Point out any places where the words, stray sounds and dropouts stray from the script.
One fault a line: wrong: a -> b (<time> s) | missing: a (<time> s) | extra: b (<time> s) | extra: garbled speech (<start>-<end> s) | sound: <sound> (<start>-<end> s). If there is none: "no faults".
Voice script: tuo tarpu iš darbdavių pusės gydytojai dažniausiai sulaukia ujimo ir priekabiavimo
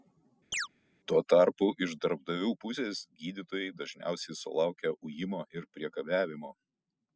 sound: chirp (0.5-0.7 s)